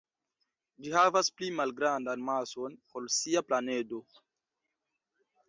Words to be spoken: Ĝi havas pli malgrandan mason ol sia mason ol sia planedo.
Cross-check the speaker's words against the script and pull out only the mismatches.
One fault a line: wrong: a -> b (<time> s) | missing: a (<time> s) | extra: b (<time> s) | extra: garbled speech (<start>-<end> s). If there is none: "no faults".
missing: mason ol sia (3.5 s)